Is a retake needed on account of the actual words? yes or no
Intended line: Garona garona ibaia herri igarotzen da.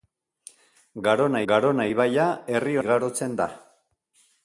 no